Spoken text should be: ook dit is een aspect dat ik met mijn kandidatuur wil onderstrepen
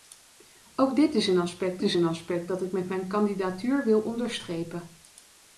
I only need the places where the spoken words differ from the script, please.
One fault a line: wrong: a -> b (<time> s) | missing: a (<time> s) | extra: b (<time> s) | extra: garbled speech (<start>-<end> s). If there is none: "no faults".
extra: is een aspect (1.8 s)